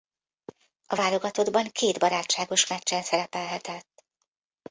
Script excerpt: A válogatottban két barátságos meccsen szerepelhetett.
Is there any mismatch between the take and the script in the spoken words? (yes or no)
no